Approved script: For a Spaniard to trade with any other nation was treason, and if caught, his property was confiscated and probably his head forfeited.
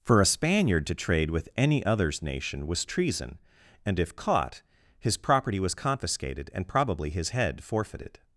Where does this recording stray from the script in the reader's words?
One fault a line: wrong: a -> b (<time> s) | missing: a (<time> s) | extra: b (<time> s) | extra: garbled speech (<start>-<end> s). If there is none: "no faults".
wrong: other -> others (1.8 s)